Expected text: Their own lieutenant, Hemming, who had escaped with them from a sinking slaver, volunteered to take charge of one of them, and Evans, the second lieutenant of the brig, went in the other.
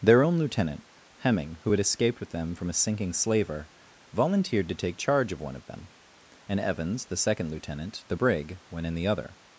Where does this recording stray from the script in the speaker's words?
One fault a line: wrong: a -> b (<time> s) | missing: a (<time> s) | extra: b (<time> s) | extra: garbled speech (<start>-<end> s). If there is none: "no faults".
missing: of (8.0 s)